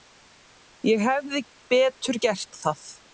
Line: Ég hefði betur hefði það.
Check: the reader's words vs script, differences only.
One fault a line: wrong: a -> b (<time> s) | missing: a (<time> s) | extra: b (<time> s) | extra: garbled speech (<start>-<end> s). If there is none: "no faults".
wrong: hefði -> gert (2.3 s)